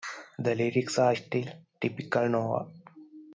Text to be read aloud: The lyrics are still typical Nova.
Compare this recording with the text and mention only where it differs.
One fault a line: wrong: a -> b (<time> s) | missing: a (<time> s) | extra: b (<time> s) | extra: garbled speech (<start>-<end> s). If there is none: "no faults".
no faults